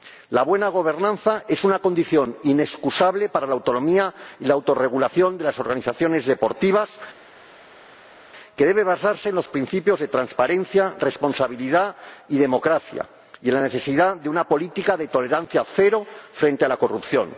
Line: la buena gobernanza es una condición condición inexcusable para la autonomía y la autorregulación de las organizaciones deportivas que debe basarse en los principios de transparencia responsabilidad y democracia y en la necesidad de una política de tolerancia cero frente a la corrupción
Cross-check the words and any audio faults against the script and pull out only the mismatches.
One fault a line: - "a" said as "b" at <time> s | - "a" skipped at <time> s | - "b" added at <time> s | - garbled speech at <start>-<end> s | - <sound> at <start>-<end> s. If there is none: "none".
- "condición" skipped at 2.4 s